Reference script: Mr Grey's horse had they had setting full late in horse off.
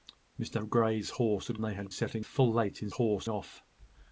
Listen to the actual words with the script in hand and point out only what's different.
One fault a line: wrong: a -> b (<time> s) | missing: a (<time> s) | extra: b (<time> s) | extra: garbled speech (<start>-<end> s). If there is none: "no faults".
no faults